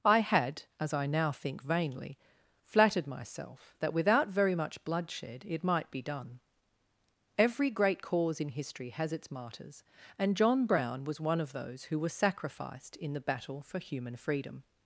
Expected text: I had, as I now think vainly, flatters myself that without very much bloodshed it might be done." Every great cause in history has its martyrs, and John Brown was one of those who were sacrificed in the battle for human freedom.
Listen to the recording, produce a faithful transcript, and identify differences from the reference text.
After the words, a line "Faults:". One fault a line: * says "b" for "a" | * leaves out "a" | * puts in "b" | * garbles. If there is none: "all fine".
I had, as I now think vainly, flattered myself that without very much bloodshed it might be done." Every great cause in history has its martyrs, and John Brown was one of those who were sacrificed in the battle for human freedom.
Faults:
* says "flattered" for "flatters"